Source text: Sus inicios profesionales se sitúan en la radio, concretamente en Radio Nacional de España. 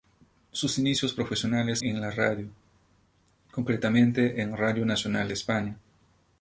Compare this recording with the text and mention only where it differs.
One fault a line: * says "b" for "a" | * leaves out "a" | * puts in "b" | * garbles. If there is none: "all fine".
* leaves out "se sitúan"